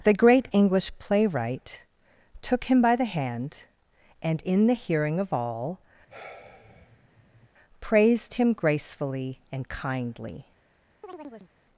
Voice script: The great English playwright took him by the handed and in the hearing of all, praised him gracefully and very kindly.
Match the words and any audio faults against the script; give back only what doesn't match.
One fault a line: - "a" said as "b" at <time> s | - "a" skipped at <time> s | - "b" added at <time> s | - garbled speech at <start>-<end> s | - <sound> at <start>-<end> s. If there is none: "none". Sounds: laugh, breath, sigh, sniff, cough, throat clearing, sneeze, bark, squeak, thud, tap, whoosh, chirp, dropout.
- "handed" said as "hand" at 3.0 s
- sigh at 6.1-7.5 s
- "very" skipped at 9.7 s
- chirp at 11.0-11.5 s